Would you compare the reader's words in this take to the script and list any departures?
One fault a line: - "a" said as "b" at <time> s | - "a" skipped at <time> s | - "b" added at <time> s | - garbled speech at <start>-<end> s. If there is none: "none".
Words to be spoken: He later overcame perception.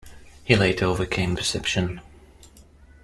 none